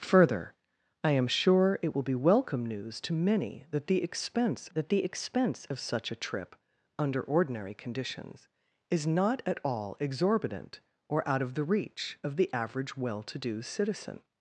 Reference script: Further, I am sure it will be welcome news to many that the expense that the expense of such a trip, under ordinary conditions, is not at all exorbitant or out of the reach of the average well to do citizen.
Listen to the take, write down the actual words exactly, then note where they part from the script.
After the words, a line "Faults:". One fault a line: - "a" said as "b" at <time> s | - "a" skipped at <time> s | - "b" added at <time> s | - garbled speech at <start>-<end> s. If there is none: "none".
Further, I am sure it will be welcome news to many that the expense that the expense of such a trip, under ordinary conditions, is not at all exorbitant or out of the reach of the average well to do citizen.
Faults:
none